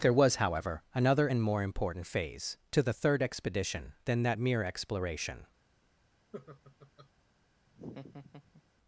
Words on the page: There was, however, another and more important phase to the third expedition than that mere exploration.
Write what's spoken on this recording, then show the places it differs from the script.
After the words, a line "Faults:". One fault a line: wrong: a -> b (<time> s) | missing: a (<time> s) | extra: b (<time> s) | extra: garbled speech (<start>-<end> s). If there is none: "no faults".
There was, however, another and more important phase to the third expedition than that mere exploration.
Faults:
no faults